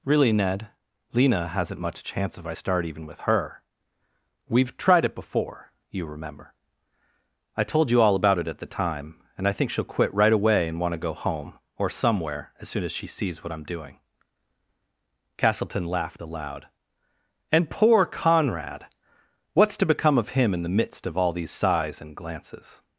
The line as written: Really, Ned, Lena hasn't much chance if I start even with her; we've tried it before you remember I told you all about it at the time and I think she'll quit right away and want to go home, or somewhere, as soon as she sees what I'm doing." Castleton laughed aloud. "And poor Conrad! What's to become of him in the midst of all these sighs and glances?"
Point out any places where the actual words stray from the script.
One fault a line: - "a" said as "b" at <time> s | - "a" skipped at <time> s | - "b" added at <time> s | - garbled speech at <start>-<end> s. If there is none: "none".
none